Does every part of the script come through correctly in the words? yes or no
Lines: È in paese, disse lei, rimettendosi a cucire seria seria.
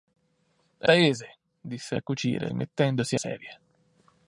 no